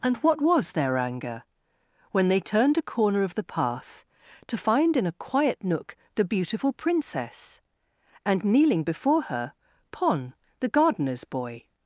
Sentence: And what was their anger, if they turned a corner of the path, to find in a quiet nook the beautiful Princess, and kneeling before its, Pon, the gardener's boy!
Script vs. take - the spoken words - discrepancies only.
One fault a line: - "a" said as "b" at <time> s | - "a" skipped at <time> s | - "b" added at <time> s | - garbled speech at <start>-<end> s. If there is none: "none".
- "if" said as "when" at 2.1 s
- "its" said as "her" at 9.2 s